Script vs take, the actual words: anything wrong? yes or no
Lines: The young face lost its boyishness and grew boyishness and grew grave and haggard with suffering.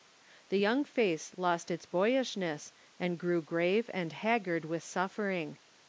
yes